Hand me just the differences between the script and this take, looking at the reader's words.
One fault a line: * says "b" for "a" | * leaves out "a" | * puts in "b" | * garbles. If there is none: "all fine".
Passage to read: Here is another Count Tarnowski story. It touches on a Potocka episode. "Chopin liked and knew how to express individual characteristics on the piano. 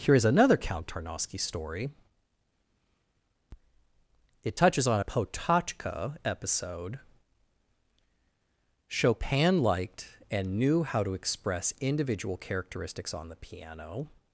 all fine